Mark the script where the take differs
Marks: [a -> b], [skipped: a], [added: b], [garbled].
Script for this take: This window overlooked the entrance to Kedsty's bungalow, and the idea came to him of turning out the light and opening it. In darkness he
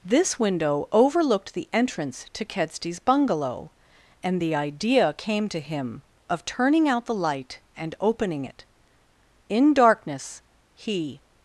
This window overlooked the entrance to Kedsty's bungalow, and the idea came to him of turning out the light and opening it. In darkness he